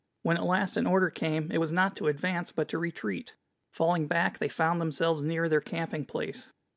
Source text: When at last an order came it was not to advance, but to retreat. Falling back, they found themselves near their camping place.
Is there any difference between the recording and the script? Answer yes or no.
no